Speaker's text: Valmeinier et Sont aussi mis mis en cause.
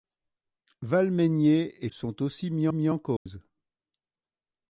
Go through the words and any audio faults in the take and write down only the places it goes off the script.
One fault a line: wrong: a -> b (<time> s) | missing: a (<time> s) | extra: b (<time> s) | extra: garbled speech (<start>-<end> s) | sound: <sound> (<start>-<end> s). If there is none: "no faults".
sound: dropout (3.2-3.3 s)